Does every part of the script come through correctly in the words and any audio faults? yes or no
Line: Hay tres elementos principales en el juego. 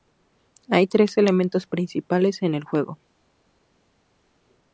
yes